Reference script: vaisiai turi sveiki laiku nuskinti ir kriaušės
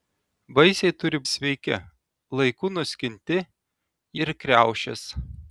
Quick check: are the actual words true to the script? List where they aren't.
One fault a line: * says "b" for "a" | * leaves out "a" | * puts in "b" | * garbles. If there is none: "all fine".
all fine